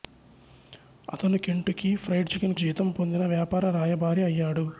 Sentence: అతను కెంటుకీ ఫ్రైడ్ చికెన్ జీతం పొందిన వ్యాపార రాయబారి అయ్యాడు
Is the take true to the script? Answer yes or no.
yes